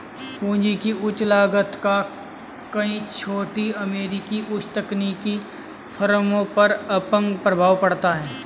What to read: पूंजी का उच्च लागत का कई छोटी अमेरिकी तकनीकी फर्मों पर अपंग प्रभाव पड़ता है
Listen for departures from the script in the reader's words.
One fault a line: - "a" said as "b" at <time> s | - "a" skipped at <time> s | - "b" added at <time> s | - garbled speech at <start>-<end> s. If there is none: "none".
- "का" said as "की" at 0.8 s
- "उच्च" added at 4.5 s